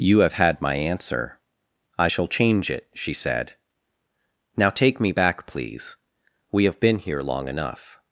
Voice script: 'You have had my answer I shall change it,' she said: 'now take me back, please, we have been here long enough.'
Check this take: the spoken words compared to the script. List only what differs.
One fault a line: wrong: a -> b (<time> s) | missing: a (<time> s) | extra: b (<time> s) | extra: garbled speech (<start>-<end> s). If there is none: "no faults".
no faults